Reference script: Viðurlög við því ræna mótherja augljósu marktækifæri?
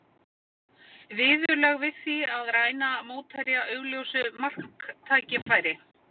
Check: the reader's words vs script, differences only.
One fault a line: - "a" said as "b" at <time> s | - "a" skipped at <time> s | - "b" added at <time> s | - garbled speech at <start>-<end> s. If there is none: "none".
- "að" added at 2.4 s